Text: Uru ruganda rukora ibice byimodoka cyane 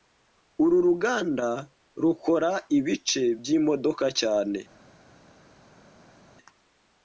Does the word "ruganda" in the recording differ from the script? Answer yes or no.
no